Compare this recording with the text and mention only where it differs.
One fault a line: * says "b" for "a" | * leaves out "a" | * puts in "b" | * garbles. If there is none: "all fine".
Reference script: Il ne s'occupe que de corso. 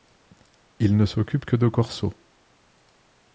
all fine